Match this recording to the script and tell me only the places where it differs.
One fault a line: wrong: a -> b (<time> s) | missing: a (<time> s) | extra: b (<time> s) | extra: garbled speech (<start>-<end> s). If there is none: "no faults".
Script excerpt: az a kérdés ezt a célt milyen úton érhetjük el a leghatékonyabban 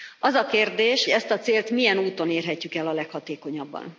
no faults